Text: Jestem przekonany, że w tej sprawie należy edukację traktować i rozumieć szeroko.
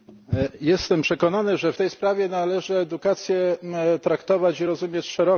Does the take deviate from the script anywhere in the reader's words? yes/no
no